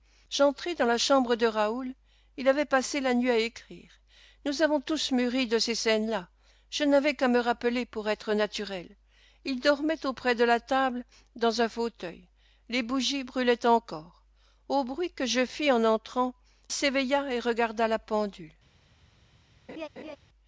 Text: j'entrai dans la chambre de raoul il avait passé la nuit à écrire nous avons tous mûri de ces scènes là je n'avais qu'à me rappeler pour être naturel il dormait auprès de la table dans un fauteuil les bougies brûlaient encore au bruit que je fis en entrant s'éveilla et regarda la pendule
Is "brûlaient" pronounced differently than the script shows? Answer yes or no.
no